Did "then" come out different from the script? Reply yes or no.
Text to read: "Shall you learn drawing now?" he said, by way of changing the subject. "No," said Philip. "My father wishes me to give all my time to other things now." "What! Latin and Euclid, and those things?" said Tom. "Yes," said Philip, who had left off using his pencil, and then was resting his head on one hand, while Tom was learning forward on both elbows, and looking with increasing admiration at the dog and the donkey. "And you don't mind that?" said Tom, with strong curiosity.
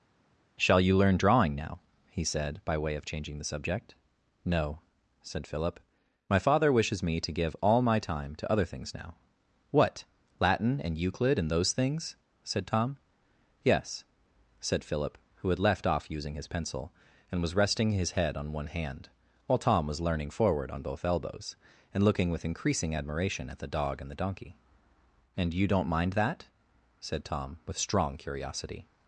yes